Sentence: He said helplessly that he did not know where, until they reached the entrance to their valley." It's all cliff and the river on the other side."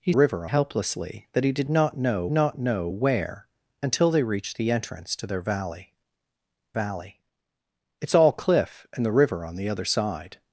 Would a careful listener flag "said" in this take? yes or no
yes